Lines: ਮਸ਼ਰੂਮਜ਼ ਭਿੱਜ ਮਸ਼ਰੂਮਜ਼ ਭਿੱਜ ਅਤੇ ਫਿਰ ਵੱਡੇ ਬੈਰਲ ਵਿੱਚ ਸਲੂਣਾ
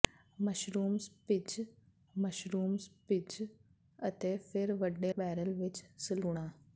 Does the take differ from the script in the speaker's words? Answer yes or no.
no